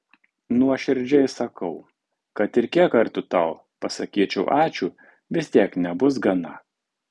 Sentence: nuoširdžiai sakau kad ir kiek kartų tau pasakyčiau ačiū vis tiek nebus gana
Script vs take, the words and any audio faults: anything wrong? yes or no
no